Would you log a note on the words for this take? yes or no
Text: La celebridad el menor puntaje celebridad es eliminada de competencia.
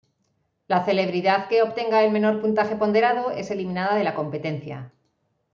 yes